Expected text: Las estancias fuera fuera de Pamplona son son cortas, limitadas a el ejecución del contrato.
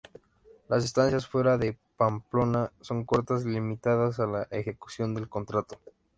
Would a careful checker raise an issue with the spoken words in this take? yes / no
yes